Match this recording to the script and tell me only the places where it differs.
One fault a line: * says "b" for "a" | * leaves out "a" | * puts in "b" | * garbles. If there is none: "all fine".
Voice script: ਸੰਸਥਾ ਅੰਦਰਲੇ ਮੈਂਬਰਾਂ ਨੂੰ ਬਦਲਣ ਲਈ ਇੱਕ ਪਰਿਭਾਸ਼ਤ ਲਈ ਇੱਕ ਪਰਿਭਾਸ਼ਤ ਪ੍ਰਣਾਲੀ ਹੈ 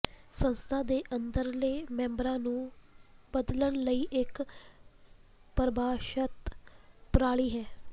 * puts in "ਦੇ"
* leaves out "ਲਈ ਇੱਕ ਪਰਿਭਾਸ਼ਤ"